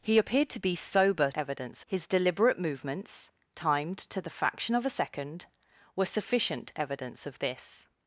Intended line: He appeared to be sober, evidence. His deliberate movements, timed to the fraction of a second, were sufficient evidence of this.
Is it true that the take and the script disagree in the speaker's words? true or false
false